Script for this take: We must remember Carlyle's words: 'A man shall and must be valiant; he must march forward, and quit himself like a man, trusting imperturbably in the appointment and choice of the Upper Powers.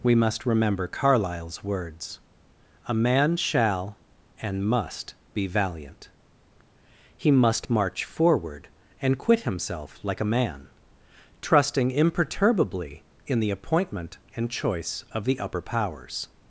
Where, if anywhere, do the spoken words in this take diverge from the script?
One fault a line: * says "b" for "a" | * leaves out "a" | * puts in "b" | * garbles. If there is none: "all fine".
all fine